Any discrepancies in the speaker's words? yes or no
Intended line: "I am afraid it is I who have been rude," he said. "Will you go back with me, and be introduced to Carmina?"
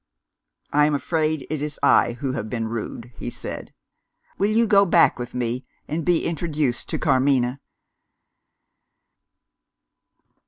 no